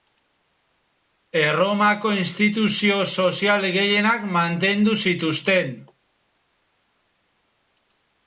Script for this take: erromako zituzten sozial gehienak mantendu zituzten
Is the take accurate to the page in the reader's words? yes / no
no